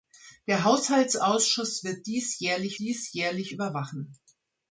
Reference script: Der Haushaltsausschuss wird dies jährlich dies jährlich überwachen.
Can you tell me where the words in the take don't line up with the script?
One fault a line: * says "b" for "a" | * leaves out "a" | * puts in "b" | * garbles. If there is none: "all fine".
all fine